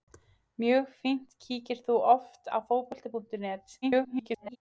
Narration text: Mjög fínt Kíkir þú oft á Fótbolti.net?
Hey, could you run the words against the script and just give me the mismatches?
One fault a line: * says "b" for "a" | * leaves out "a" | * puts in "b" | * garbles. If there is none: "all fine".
* garbles